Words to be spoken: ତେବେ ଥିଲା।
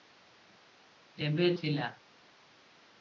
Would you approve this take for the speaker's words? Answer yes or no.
yes